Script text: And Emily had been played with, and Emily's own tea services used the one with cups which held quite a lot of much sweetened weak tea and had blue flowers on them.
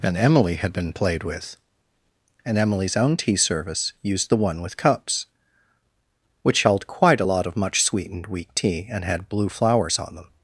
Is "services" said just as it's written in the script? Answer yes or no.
no